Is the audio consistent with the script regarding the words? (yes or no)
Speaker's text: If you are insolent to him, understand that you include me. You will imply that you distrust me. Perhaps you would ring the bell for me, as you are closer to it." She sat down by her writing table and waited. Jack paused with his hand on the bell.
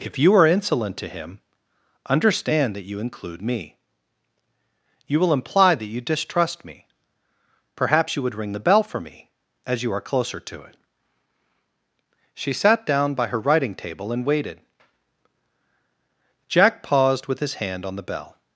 yes